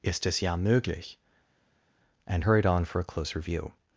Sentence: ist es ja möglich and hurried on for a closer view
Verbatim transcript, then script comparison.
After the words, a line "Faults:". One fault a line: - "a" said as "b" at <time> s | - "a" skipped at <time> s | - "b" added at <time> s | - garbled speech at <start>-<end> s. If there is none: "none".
ist es ja möglich and hurried on for a closer view
Faults:
none